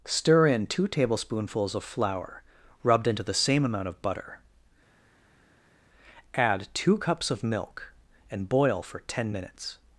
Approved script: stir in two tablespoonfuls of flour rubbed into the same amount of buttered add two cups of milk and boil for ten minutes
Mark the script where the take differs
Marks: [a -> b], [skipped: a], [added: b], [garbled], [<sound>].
stir in two tablespoonfuls of flour rubbed into the same amount of [buttered -> butter] add two cups of milk and boil for ten minutes